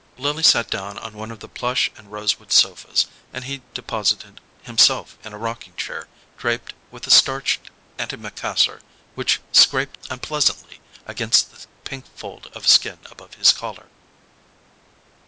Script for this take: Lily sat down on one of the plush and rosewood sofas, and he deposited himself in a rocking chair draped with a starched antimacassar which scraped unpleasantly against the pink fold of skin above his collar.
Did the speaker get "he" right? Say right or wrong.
right